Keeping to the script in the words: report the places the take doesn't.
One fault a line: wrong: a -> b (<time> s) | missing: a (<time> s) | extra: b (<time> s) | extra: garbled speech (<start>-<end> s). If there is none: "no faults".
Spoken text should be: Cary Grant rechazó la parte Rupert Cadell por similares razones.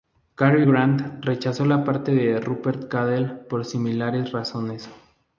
extra: de (2.1 s)